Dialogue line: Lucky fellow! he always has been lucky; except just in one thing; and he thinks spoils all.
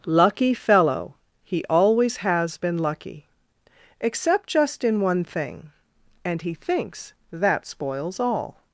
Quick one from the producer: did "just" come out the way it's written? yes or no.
yes